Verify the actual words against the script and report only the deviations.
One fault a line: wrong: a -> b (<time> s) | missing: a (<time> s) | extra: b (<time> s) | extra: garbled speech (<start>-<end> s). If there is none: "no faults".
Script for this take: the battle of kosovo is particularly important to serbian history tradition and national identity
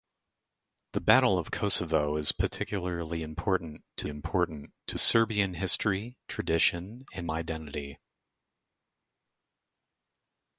extra: important to (4.1 s)
missing: national (7.3 s)